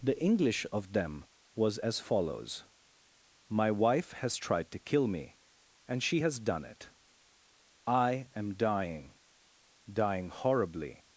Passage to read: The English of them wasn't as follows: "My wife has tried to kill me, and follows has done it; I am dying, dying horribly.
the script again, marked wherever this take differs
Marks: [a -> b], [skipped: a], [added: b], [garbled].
The English of them [wasn't -> was] as follows: "My wife has tried to kill me, and [follows -> she] has done it; I am dying, dying horribly.